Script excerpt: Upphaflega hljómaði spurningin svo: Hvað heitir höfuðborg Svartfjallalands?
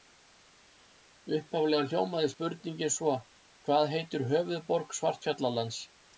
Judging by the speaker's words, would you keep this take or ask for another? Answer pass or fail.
pass